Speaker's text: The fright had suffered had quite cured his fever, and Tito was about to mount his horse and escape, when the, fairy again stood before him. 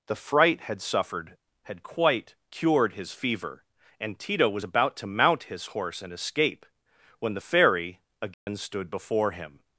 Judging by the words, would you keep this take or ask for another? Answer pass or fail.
pass